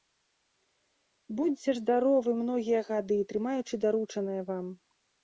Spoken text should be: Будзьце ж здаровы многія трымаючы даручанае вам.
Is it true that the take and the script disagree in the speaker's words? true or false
true